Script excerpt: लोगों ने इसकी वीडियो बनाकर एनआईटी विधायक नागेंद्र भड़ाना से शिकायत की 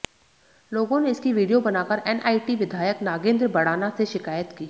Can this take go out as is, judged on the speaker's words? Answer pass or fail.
pass